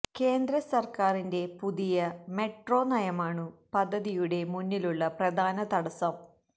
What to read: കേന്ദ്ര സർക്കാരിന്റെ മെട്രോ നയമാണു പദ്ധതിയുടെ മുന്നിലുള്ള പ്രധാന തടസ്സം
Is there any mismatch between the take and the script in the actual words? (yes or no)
yes